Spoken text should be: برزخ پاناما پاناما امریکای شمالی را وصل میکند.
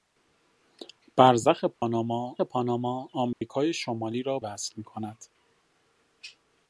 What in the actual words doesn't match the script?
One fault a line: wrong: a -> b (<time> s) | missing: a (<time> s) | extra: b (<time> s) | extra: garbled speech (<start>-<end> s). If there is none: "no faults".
no faults